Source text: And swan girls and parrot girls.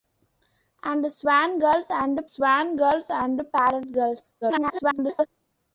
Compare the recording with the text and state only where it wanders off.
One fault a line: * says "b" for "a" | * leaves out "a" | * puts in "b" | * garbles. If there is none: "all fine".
* puts in "swan girls and"
* garbles